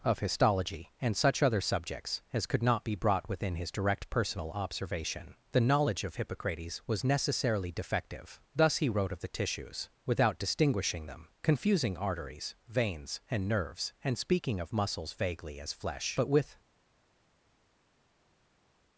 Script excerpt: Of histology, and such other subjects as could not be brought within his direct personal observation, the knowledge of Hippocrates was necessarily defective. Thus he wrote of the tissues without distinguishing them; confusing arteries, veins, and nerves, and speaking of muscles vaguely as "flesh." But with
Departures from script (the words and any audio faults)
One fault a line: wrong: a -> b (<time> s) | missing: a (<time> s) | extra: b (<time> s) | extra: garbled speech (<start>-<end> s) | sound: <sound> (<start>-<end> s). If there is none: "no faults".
no faults